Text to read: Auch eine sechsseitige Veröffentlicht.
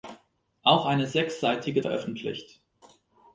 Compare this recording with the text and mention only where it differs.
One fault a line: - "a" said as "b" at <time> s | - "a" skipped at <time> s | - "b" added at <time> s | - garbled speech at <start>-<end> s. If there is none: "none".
none